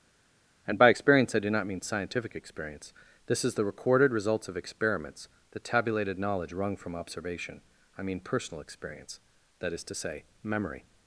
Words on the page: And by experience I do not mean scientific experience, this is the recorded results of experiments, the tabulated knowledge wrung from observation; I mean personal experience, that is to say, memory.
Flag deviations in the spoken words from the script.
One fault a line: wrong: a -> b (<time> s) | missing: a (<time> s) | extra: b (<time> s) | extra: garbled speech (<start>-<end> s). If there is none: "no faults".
no faults